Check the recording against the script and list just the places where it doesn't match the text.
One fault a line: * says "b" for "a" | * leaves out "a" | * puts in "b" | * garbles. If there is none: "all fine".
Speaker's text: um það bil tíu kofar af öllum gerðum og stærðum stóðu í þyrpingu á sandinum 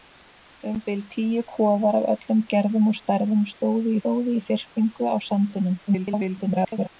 * leaves out "það"
* puts in "stóðu"
* garbles